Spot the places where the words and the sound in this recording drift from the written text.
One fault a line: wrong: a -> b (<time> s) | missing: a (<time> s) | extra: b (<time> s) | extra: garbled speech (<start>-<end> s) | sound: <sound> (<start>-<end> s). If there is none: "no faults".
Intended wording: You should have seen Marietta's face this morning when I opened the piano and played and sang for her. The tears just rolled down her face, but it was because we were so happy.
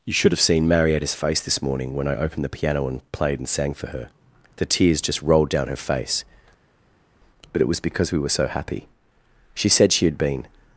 extra: She said she had been (9.5 s)